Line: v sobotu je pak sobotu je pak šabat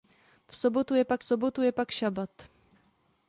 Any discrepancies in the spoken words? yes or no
no